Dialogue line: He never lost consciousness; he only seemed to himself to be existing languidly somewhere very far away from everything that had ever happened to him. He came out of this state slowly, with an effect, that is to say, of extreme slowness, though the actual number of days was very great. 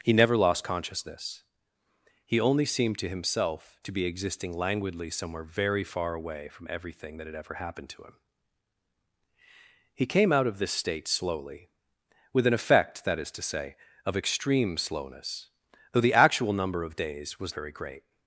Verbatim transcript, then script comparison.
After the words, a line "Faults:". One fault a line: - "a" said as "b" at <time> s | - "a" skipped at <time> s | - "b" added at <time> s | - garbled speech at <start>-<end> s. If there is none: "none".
He never lost consciousness; he only seemed to himself to be existing languidly somewhere very far away from everything that had ever happened to him. He came out of this state slowly, with an effect, that is to say, of extreme slowness, though the actual number of days was very great.
Faults:
none